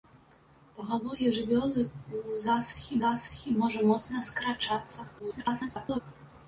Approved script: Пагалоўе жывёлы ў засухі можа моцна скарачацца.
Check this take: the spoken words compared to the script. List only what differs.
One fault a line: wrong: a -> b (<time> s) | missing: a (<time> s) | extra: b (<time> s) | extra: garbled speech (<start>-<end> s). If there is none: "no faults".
extra: засухі (3.0 s)
extra: garbled speech (5.2-6.0 s)